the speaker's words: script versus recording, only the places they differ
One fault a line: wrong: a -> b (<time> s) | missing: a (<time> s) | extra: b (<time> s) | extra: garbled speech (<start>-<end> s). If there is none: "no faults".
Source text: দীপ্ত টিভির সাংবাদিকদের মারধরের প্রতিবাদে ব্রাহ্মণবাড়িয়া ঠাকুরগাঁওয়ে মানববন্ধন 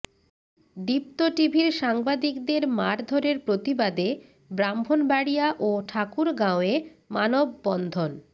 extra: ও (5.6 s)